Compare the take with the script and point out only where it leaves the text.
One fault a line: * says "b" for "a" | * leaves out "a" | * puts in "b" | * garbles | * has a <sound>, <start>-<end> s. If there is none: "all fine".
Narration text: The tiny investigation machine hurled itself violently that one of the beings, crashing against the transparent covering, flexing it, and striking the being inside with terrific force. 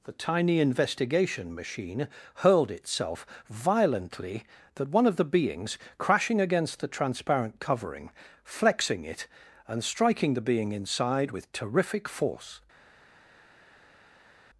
all fine